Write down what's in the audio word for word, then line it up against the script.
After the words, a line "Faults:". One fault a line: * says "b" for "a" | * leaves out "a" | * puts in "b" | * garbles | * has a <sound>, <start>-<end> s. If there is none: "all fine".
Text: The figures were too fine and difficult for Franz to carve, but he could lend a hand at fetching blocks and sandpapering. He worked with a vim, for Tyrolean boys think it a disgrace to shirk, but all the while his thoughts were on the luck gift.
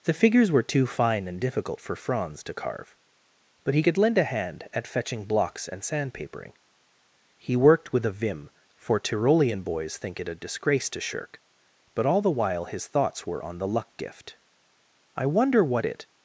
The figures were too fine and difficult for Franz to carve, but he could lend a hand at fetching blocks and sandpapering. He worked with a vim, for Tyrolean boys think it a disgrace to shirk, but all the while his thoughts were on the luck gift. "I wonder what it
Faults:
* puts in "I wonder what it"